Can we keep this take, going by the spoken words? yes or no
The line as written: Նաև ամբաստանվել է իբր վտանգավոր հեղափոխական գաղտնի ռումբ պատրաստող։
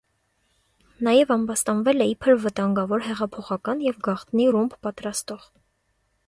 no